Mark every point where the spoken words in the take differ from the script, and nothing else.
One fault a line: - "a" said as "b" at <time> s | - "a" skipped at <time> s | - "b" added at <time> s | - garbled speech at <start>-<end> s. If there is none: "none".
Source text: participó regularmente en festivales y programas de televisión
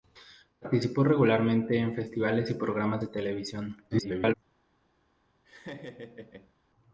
- garbled speech at 3.9-4.3 s